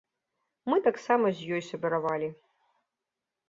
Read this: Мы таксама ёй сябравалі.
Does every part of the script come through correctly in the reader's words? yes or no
no